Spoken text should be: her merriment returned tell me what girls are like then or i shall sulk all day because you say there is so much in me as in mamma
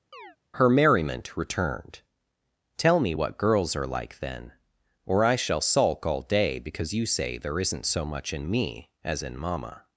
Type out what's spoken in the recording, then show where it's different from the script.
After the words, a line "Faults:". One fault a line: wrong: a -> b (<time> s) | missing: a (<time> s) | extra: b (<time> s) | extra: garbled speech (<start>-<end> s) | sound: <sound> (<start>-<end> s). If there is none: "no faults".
her merriment returned tell me what girls are like then or i shall sulk all day because you say there isn't so much in me as in mamma
Faults:
sound: chirp (0.1-0.4 s)
wrong: is -> isn't (7.6 s)